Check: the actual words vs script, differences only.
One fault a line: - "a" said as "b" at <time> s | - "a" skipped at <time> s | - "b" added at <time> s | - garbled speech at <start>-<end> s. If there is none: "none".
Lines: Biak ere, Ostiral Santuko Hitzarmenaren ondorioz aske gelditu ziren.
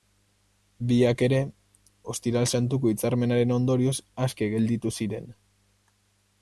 none